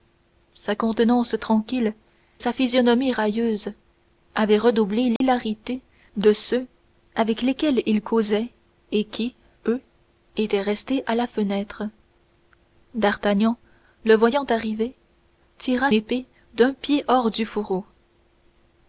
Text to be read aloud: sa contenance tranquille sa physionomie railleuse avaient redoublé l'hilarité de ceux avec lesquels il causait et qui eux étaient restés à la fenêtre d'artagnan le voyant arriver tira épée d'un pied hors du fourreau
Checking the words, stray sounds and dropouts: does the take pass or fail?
fail